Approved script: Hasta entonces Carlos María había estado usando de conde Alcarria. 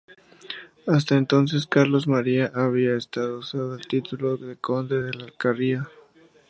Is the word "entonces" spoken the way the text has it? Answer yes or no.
yes